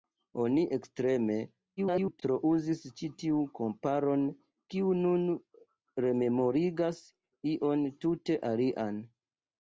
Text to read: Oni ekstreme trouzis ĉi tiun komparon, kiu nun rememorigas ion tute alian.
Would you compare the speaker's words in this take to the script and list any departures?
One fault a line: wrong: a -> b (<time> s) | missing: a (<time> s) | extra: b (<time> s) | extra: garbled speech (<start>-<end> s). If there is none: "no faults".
extra: garbled speech (1.8-2.2 s)